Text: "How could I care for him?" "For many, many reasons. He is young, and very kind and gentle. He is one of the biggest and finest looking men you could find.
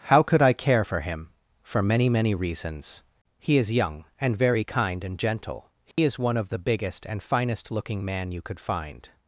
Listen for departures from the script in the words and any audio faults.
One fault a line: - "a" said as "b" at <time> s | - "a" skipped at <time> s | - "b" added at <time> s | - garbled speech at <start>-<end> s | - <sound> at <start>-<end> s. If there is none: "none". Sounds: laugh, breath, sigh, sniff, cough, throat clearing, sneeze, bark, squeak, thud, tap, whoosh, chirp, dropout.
- dropout at 5.9-6.0 s
- "men" said as "man" at 8.0 s